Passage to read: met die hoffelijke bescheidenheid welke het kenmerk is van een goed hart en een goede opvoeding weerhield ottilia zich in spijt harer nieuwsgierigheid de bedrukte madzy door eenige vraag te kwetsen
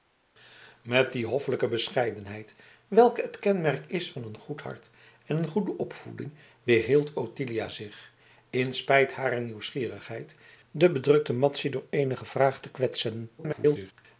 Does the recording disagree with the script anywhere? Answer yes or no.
yes